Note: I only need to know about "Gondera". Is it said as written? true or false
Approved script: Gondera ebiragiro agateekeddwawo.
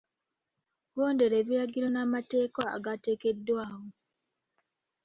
true